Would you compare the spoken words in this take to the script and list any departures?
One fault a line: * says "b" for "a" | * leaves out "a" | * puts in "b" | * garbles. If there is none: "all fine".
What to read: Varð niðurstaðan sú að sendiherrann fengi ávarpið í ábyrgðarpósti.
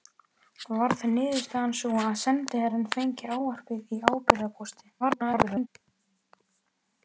* garbles